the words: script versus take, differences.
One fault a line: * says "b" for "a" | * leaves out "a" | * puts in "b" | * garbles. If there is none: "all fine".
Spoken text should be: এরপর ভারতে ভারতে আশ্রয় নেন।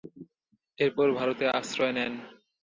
* leaves out "ভারতে"